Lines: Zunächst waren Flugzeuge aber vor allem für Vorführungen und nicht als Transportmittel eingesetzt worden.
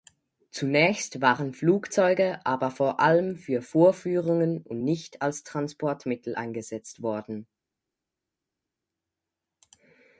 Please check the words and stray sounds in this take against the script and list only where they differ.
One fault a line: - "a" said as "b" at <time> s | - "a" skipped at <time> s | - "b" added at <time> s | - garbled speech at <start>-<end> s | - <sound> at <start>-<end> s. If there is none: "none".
none